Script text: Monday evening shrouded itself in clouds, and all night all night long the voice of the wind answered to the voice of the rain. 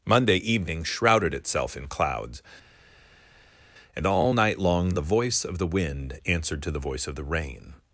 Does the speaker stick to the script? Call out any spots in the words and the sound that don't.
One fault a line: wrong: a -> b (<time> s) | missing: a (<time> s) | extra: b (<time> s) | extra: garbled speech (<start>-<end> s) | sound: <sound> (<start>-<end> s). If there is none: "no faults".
missing: all night (4.6 s)